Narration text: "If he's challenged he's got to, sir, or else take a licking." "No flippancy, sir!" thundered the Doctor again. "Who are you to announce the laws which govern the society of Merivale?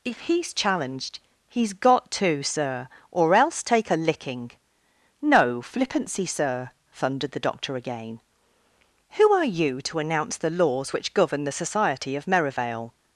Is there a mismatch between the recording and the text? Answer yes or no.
no